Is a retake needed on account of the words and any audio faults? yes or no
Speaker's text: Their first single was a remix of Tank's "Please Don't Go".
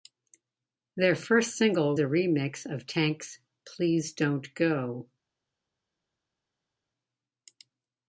yes